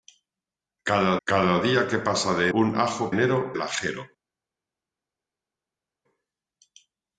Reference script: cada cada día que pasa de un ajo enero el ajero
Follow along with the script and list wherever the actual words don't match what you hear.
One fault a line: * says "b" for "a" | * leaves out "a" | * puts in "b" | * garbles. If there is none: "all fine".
all fine